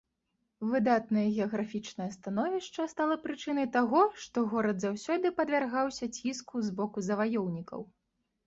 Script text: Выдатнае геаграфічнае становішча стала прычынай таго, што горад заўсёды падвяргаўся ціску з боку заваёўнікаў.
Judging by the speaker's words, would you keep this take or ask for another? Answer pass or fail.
pass